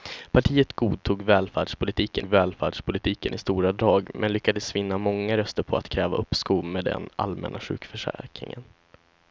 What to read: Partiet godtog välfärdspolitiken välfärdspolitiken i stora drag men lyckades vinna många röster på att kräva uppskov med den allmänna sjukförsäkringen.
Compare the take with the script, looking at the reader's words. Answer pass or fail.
pass